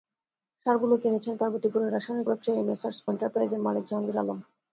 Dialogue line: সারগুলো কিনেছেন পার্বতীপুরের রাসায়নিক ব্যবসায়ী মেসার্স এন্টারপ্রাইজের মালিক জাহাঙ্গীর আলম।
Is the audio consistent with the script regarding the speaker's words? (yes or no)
yes